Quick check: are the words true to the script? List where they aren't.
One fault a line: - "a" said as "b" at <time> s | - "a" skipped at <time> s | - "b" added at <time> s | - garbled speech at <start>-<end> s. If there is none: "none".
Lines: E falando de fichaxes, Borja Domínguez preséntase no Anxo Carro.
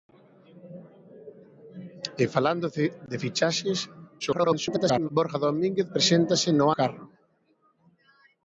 - garbled speech at 4.2-5.1 s
- "Anxo" skipped at 6.6 s